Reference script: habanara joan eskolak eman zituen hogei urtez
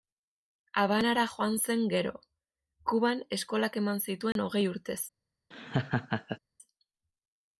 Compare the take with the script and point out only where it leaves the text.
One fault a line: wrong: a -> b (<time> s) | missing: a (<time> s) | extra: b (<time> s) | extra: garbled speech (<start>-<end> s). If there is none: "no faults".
extra: zen gero kuban (1.6 s)